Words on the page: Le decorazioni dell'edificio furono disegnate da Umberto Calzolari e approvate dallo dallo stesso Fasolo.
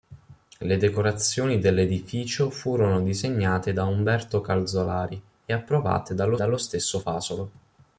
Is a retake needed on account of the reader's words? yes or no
no